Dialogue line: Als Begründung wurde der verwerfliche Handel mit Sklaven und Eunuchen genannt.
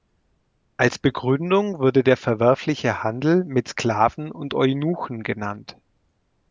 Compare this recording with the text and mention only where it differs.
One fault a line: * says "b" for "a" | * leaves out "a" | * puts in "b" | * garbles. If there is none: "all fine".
all fine